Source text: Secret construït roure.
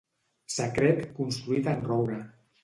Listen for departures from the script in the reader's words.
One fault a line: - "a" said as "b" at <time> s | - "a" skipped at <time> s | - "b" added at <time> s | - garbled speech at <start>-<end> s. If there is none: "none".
- "en" added at 1.7 s